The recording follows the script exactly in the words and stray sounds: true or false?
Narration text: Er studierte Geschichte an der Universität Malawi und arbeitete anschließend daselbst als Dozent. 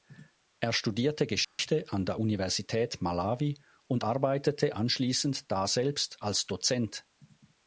false